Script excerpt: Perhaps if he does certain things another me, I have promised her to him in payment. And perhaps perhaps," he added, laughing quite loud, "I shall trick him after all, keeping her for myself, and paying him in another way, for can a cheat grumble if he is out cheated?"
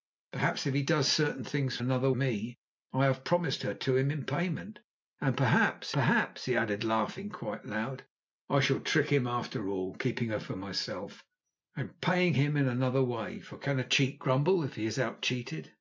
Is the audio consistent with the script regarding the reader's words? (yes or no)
yes